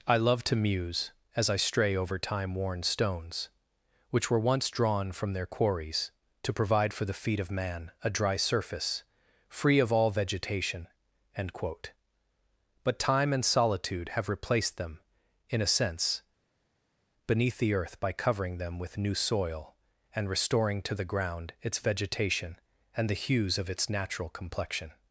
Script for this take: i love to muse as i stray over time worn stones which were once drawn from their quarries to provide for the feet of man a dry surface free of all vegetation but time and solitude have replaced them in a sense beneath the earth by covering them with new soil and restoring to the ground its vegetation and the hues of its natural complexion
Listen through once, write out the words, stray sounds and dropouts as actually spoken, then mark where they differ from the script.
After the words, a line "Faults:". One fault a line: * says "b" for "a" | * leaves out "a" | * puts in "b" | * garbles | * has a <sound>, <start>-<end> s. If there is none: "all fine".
i love to muse as i stray over time worn stones which were once drawn from their quarries to provide for the feet of man a dry surface free of all vegetation end quote but time and solitude have replaced them in a sense beneath the earth by covering them with new soil and restoring to the ground its vegetation and the hues of its natural complexion
Faults:
* puts in "end quote"